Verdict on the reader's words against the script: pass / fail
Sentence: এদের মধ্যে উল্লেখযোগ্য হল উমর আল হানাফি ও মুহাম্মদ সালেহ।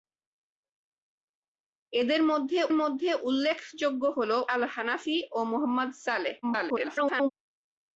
fail